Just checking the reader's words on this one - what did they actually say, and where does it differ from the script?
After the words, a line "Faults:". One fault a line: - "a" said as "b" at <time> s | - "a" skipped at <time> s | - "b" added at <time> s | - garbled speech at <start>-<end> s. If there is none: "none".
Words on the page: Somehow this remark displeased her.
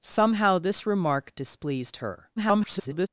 Somehow this remark displeased her. [garbled]
Faults:
- garbled speech at 2.4-3.1 s